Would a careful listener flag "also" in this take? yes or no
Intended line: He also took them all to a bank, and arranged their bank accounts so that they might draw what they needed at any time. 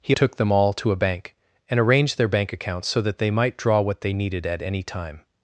yes